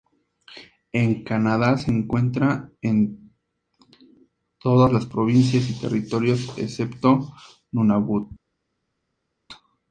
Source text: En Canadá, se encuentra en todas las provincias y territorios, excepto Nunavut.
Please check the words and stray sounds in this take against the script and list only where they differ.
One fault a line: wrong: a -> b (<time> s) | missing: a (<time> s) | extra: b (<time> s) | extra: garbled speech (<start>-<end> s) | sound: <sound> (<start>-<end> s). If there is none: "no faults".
no faults